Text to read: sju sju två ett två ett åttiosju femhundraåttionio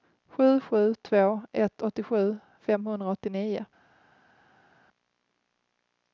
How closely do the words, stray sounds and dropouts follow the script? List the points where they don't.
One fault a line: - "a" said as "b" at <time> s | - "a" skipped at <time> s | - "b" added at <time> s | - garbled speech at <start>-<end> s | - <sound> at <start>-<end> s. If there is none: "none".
- "två ett" skipped at 1.8 s